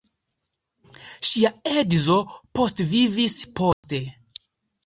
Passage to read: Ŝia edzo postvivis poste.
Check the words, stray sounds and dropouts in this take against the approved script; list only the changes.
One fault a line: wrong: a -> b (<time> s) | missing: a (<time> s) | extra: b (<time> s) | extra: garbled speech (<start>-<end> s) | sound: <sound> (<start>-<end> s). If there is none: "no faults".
sound: dropout (3.7-3.8 s)